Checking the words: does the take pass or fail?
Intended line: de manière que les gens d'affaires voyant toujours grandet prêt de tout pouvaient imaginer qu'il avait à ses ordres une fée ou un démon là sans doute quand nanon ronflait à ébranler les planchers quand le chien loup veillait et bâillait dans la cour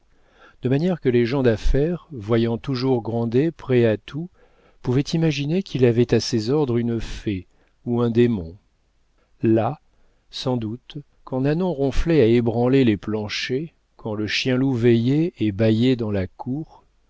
fail